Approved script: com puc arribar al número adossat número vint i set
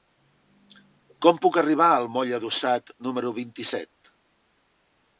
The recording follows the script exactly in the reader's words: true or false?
false